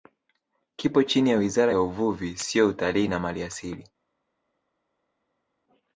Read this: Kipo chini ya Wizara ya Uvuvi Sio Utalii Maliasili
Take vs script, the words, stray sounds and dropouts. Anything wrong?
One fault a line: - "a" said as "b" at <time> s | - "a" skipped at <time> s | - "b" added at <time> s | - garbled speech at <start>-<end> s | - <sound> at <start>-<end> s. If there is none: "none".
- "na" added at 3.1 s